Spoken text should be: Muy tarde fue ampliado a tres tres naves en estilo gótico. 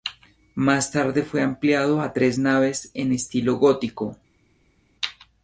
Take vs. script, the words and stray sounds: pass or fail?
fail